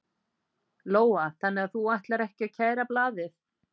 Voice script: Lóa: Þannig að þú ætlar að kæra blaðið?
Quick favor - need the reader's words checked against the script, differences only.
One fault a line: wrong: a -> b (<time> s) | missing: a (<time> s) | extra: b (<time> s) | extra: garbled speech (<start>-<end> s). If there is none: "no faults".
extra: ekki (2.3 s)